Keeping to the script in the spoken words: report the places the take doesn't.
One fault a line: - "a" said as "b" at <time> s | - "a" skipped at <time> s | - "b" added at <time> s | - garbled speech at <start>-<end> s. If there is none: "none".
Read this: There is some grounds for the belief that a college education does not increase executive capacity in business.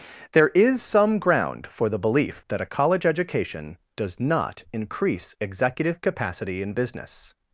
- "grounds" said as "ground" at 1.2 s